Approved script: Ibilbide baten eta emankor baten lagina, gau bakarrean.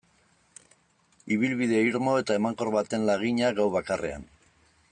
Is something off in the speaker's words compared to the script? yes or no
yes